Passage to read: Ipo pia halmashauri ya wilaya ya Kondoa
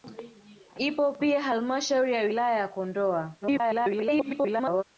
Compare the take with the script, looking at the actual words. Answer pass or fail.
fail